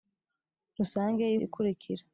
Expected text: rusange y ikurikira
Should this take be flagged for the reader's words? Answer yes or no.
no